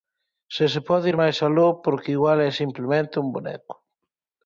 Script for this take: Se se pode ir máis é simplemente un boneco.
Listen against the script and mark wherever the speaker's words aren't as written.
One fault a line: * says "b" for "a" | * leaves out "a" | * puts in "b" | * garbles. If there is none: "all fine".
* puts in "aló porque igual"